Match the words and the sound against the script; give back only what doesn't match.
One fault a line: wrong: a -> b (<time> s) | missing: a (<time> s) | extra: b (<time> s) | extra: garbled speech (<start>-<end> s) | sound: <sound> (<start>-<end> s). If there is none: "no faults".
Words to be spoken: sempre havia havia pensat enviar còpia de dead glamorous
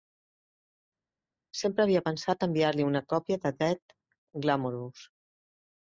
missing: havia (2.0 s)
extra: li una (2.8 s)